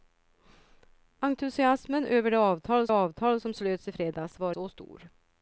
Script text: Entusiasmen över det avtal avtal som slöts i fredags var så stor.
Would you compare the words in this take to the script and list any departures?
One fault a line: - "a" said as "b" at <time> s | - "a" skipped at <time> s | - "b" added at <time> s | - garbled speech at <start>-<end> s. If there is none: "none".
none